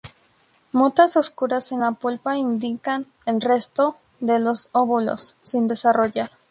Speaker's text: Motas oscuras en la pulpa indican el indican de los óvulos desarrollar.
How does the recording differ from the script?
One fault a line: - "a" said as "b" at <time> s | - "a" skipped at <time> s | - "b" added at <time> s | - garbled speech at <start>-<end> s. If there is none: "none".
- "indican" said as "resto" at 3.4 s
- "sin" added at 5.4 s